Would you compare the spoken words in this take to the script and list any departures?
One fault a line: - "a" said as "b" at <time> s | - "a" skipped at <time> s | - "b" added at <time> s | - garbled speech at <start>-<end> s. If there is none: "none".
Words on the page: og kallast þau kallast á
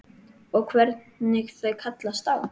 - "kallast" said as "hvernig" at 0.7 s